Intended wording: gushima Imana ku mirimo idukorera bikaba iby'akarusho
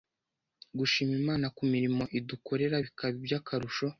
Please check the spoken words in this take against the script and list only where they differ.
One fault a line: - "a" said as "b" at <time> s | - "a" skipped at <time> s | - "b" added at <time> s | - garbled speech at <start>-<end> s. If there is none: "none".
none